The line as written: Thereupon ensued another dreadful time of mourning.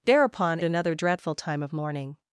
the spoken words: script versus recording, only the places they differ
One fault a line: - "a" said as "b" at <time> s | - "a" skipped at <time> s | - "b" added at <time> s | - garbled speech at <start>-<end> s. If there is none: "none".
- "ensued" skipped at 0.6 s